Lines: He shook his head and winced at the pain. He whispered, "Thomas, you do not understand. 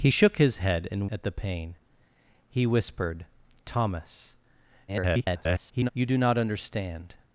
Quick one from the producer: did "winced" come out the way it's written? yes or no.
no